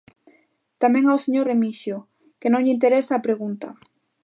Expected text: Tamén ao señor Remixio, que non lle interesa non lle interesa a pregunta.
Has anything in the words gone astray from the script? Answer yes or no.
yes